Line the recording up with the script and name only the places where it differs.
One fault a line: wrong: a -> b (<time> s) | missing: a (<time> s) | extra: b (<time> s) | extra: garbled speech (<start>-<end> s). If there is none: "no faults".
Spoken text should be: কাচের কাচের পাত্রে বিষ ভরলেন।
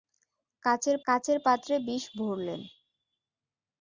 no faults